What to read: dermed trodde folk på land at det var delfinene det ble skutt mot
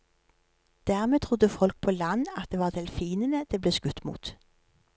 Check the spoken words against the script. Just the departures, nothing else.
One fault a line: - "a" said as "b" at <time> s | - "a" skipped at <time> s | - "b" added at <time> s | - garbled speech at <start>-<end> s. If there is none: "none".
none